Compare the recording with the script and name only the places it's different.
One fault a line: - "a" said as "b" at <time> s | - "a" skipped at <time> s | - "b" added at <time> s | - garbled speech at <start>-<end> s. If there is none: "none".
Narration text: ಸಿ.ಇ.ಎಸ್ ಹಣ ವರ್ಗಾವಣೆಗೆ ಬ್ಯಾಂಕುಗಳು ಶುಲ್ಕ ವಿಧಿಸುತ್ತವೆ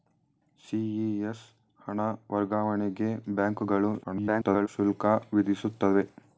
- garbled speech at 4.0-4.7 s